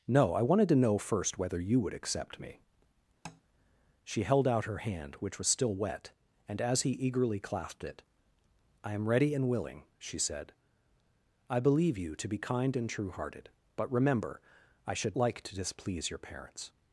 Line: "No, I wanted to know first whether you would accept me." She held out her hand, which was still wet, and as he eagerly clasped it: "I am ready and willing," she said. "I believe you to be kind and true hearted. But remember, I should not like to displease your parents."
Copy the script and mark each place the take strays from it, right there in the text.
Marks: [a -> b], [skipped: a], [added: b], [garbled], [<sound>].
"No, I wanted to know first whether you would accept me." [tap] She held out her hand, which was still wet, and as he eagerly clasped it: "I am ready and willing," she said. "I believe you to be kind and true hearted. But remember, I should [skipped: not] like to displease your parents."